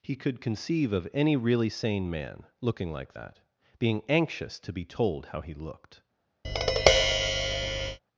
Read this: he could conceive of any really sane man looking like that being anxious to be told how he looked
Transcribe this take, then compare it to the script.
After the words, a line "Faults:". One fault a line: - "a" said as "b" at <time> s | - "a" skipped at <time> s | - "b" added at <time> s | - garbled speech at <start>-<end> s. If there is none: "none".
he could conceive of any really sane man looking like that being anxious to be told how he looked
Faults:
none